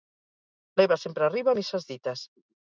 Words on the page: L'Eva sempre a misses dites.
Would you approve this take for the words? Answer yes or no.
no